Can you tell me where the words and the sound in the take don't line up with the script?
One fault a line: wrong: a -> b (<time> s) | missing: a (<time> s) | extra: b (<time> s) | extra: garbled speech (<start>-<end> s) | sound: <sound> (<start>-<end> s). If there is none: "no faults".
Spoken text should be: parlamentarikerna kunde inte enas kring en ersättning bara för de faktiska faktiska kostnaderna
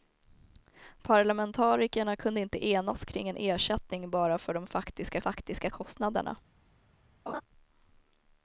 sound: laugh (7.3-7.4 s)